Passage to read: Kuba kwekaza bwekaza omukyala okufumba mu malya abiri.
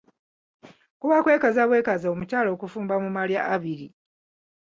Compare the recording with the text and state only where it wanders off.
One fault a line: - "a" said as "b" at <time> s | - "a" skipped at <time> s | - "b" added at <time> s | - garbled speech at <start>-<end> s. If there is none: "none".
none